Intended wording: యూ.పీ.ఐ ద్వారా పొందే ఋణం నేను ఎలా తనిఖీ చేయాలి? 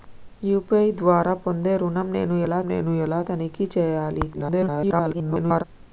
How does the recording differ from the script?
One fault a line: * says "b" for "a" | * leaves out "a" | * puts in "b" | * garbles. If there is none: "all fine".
* puts in "నేను ఎలా"
* garbles